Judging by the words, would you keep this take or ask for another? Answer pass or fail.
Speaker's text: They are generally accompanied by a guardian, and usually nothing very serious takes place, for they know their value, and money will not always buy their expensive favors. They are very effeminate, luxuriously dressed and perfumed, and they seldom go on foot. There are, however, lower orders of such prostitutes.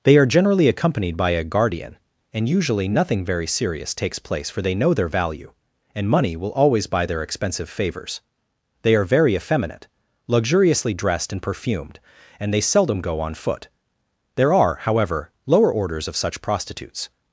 fail